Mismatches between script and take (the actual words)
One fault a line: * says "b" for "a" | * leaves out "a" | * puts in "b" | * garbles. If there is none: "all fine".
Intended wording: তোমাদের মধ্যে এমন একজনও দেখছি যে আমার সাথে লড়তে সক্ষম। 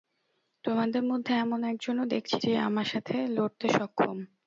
all fine